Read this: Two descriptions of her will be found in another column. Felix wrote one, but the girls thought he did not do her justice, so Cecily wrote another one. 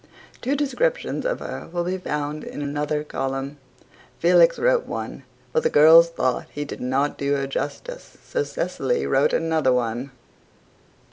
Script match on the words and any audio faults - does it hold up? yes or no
yes